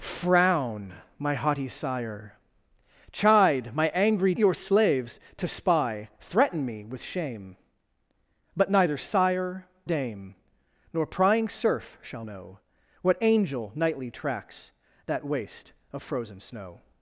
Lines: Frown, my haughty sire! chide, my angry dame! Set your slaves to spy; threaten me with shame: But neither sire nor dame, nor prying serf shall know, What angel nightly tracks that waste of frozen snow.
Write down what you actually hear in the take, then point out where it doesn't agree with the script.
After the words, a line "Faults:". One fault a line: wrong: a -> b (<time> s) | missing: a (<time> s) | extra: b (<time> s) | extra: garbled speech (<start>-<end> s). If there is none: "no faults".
Frown, my haughty sire! chide, my angry your slaves to spy; threaten me with shame: But neither sire dame, nor prying serf shall know, What angel nightly tracks that waste of frozen snow.
Faults:
missing: dame Set (4.3 s)
missing: nor (9.7 s)